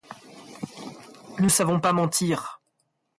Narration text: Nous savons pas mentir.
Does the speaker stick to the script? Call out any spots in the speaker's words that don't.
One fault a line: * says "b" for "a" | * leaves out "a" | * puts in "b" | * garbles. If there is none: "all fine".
all fine